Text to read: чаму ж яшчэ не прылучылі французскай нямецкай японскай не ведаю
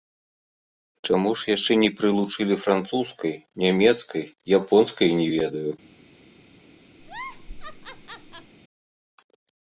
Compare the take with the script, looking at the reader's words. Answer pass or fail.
pass